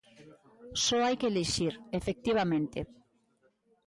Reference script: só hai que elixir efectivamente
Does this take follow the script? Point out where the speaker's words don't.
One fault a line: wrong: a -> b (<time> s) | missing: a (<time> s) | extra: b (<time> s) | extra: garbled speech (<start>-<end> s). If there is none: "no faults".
no faults